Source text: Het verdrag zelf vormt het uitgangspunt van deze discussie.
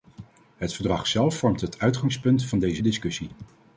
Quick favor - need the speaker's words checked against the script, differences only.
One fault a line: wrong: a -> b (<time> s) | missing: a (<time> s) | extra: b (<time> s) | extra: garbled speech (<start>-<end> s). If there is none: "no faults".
no faults